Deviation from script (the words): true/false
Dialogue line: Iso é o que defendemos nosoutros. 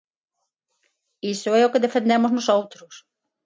false